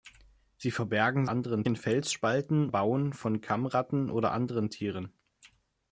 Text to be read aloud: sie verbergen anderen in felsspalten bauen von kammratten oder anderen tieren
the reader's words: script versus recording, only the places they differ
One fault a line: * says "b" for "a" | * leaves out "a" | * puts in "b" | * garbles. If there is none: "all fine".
all fine